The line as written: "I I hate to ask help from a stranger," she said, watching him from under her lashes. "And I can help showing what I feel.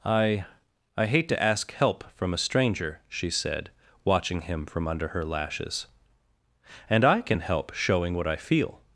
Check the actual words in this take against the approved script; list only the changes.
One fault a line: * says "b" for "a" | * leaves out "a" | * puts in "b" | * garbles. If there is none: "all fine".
all fine